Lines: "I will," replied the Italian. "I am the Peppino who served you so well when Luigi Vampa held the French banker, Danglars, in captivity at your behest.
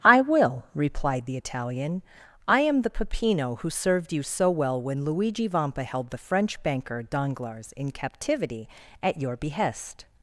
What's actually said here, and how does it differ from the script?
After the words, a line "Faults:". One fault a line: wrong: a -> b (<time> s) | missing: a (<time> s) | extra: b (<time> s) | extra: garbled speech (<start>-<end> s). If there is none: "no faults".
"I will," replied the Italian. "I am the Peppino who served you so well when Luigi Vampa held the French banker, Danglars, in captivity at your behest.
Faults:
no faults